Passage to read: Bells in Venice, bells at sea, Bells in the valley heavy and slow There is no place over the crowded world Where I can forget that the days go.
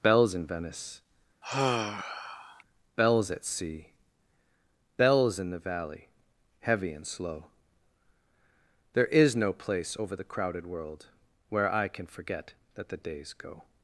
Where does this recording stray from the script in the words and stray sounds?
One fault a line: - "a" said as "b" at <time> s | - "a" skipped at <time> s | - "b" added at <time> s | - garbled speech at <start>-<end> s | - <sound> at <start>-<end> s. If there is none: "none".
- sigh at 1.4-2.6 s